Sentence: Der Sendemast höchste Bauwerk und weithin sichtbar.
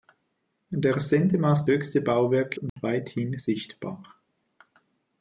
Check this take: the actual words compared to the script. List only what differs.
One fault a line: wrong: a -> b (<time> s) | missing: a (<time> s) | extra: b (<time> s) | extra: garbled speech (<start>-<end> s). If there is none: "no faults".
no faults